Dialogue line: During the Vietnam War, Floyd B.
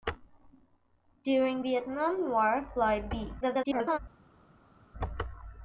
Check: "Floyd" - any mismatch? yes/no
no